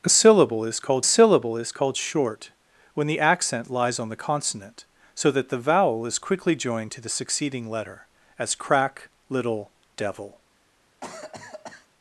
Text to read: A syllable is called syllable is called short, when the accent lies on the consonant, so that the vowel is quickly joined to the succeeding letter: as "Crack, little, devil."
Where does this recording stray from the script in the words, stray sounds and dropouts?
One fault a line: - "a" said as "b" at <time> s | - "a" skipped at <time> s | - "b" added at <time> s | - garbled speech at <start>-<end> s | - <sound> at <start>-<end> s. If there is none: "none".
- cough at 11.0-11.9 s